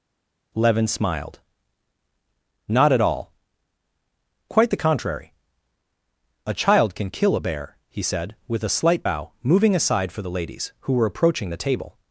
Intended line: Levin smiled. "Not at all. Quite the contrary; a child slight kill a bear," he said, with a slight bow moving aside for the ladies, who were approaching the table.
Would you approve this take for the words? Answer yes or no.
no